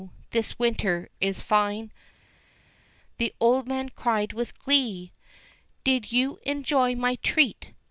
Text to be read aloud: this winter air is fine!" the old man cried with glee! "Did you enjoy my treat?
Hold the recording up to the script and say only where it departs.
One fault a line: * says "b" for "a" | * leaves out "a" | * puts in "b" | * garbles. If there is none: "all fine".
* leaves out "air"